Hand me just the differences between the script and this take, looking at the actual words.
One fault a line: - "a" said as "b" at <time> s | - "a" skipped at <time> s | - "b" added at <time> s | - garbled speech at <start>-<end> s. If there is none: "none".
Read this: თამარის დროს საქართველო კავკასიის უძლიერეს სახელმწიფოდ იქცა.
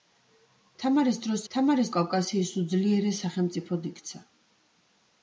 - "საქართველო" said as "თამარის" at 1.5 s